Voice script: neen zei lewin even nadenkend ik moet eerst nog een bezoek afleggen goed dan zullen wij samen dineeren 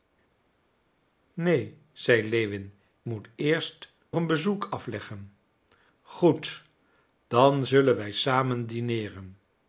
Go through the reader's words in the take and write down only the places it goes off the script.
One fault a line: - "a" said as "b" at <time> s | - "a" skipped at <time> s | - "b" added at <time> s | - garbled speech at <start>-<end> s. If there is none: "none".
- "even nadenkend ik" skipped at 2.7 s
- "nog" skipped at 3.9 s